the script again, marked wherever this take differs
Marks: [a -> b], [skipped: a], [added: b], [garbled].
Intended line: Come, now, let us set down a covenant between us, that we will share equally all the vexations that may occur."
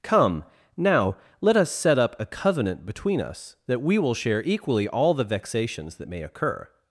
Come, now, let us set [down -> up] a covenant between us, that we will share equally all the vexations that may occur."